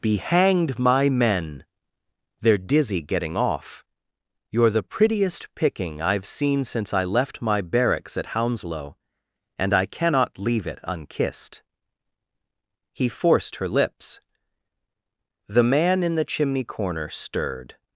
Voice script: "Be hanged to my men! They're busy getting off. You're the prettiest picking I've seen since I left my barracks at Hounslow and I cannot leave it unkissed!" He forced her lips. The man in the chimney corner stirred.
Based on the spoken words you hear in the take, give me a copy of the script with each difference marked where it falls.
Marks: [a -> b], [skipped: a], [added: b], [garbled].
"Be hanged [skipped: to] my men! They're [busy -> dizzy] getting off. You're the prettiest picking I've seen since I left my barracks at Hounslow and I cannot leave it unkissed!" He forced her lips. The man in the chimney corner stirred.